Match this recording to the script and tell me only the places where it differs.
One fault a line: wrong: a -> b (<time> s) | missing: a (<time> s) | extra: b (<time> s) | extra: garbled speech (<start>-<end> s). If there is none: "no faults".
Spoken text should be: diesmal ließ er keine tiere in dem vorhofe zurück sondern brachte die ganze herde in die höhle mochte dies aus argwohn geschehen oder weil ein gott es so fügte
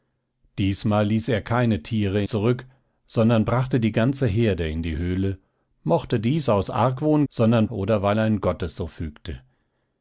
missing: in dem vorhofe (2.2 s)
wrong: geschehen -> sondern (7.3 s)